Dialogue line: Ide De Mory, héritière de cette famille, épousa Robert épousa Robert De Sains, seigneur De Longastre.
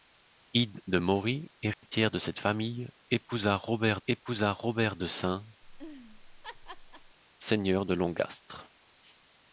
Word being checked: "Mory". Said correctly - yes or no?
yes